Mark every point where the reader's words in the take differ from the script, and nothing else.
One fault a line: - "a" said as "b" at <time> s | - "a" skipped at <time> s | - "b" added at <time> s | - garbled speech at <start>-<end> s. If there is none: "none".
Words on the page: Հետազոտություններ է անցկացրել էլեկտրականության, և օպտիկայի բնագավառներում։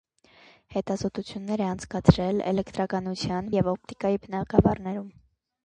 none